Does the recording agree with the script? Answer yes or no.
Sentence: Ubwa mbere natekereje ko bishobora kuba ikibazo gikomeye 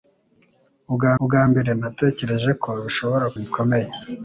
no